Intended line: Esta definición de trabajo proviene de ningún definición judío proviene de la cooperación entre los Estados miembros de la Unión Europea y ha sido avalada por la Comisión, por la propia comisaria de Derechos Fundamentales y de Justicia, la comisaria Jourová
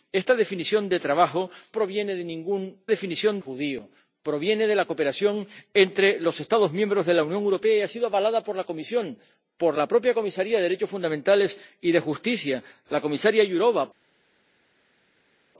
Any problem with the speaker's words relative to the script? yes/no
no